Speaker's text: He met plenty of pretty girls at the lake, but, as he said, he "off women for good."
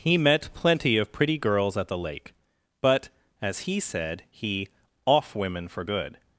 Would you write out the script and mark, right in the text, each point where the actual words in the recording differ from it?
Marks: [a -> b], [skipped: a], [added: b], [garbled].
He met plenty of pretty girls at the lake, but, as he said, he "off women for good."